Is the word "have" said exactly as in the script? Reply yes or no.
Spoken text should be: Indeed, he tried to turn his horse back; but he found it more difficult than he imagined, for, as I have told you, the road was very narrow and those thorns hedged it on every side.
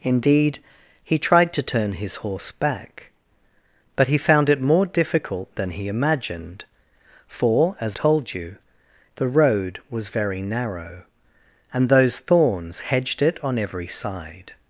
no